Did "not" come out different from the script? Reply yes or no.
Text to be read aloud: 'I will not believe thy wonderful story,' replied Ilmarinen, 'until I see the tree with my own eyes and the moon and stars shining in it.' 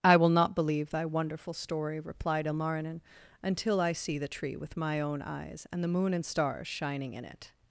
no